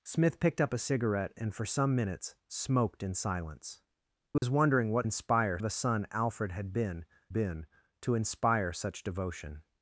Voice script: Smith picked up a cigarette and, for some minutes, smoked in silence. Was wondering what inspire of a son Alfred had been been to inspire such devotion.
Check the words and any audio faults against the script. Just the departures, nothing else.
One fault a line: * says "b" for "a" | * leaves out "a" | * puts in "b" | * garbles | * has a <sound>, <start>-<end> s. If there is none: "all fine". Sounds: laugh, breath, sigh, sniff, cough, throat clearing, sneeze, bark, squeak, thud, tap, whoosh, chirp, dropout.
* has a dropout, 4.4-4.4 s